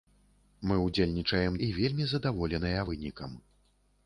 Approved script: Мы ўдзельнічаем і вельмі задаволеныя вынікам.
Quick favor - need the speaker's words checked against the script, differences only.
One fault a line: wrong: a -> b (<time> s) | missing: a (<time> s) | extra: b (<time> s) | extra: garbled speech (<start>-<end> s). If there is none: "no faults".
no faults